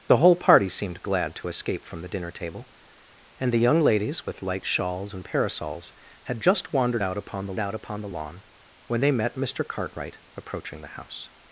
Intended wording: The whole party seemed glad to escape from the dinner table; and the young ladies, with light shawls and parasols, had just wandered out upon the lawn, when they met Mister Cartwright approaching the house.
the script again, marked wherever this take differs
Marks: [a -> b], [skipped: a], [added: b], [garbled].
The whole party seemed glad to escape from the dinner table; and the young ladies, with light shawls and parasols, had just wandered out upon the [added: out upon the] lawn, when they met Mister Cartwright approaching the house.